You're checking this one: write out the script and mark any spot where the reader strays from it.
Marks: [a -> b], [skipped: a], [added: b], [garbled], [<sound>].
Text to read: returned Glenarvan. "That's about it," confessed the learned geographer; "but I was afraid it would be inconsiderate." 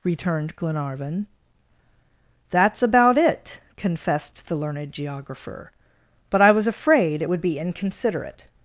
returned Glenarvan. "That's about it," confessed the learned geographer; "but I was afraid it would be inconsiderate."